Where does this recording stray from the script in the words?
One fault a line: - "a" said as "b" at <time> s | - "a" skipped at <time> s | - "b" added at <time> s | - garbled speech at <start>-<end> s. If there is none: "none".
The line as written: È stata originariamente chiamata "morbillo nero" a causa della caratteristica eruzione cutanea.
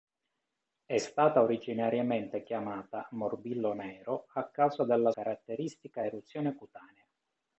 none